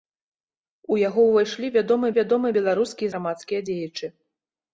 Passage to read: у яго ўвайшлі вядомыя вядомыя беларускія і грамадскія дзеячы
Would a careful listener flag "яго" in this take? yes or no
no